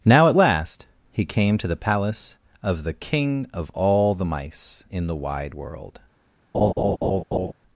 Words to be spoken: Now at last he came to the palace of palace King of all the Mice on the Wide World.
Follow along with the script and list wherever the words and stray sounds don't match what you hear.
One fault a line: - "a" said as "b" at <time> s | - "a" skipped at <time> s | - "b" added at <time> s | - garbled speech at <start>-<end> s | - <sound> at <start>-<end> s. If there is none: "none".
- "palace" said as "the" at 2.8 s
- "on" said as "in" at 4.9 s
- laugh at 6.5-7.5 s